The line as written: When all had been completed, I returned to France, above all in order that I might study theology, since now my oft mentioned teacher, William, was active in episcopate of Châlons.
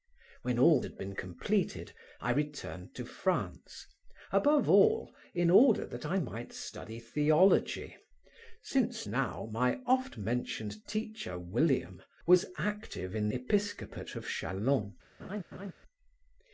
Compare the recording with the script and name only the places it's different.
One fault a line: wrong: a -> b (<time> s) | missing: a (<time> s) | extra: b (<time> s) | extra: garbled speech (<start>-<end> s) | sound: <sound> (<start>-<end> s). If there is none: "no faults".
sound: laugh (15.2-15.7 s)